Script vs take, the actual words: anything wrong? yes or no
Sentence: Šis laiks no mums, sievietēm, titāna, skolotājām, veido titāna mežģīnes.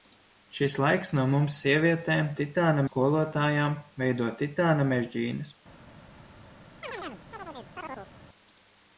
no